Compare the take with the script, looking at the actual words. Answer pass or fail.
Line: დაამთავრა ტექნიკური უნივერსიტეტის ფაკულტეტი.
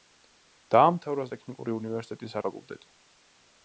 pass